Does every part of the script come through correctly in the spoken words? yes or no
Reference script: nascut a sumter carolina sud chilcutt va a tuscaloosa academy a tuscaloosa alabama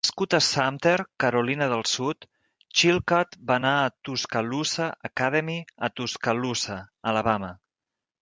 no